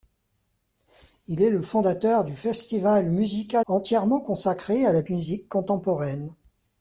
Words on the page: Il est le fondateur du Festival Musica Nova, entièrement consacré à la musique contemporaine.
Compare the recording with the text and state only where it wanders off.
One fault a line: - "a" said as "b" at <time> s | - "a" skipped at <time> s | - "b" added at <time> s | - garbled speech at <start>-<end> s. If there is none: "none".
- "Nova" skipped at 3.6 s